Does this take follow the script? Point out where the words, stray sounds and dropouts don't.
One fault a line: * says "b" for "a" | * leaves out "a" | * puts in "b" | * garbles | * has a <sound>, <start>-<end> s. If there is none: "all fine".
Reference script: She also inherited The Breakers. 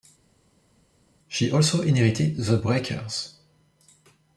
all fine